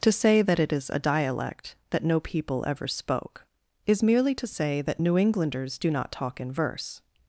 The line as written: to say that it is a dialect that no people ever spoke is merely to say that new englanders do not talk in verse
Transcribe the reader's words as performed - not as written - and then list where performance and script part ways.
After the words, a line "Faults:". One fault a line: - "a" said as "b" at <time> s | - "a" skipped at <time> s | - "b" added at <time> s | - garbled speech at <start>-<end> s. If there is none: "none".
to say that it is a dialect that no people ever spoke is merely to say that new englanders do not talk in verse
Faults:
none